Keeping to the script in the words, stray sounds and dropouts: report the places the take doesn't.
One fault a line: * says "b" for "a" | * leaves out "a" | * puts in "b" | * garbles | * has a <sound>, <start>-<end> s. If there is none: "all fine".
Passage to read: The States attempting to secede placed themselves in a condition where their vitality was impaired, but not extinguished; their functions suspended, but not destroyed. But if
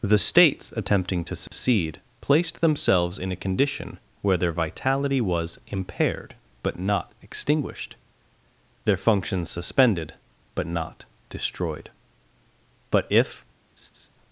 * has a dropout, 1.5-1.5 s
* has a laugh, 13.8-14.1 s